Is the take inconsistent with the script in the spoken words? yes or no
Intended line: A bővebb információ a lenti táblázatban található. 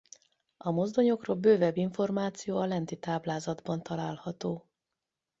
yes